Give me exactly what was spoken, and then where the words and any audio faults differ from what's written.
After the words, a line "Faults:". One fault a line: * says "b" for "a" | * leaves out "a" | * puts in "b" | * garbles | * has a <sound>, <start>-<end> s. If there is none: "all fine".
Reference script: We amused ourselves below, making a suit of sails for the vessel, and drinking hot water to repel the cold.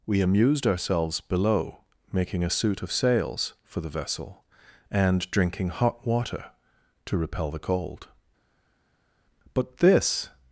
We amused ourselves below, making a suit of sails for the vessel, and drinking hot water to repel the cold. But this
Faults:
* puts in "But this"